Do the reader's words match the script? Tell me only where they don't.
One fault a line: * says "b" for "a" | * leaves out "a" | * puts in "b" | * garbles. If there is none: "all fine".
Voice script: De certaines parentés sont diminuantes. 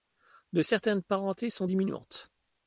all fine